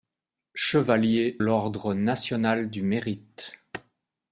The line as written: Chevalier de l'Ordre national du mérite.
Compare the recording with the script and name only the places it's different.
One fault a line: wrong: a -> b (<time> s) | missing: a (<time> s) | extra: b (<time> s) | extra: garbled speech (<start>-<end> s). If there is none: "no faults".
missing: de (1.4 s)